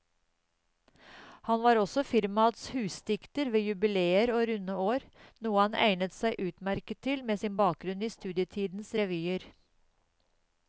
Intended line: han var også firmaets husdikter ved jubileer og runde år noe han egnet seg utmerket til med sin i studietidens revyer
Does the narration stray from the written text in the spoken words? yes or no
yes